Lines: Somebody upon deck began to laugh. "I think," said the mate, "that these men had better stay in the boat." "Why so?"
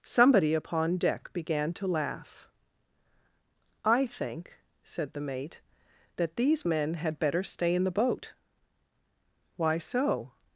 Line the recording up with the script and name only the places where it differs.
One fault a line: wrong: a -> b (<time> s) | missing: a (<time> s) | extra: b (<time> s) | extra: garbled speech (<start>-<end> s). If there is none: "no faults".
no faults